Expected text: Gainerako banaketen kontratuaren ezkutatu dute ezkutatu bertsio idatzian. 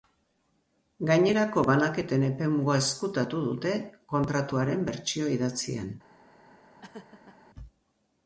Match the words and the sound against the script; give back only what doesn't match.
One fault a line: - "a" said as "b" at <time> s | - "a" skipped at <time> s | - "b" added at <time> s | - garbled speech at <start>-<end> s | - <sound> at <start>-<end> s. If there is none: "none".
- "kontratuaren" said as "epemuga" at 2.3 s
- "ezkutatu" said as "kontratuaren" at 4.2 s
- laugh at 6.8-7.4 s